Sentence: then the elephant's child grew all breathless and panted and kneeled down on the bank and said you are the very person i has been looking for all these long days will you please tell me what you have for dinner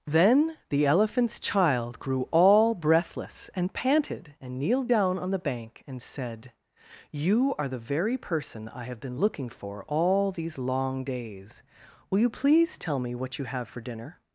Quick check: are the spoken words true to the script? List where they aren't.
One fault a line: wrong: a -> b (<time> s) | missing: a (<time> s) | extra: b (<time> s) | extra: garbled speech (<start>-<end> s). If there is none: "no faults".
wrong: has -> have (8.8 s)